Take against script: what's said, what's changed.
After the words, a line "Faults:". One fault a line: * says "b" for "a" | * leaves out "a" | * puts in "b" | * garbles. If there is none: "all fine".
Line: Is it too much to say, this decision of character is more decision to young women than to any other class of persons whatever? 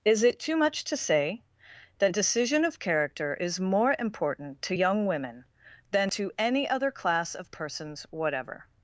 Is it too much to say, that decision of character is more important to young women than to any other class of persons whatever?
Faults:
* says "that" for "this"
* says "important" for "decision"